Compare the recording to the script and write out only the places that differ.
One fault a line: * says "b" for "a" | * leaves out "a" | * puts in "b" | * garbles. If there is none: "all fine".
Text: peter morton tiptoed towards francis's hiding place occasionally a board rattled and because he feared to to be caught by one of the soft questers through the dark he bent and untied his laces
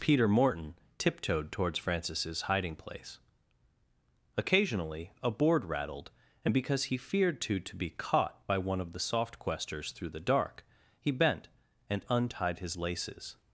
all fine